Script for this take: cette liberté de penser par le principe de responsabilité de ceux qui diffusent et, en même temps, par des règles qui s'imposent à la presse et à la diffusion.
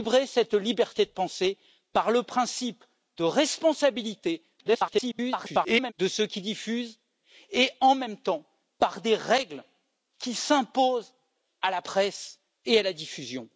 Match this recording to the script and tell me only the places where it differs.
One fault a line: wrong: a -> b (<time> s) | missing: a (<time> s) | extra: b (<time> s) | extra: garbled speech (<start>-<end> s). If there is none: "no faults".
extra: garbled speech (4.6-5.9 s)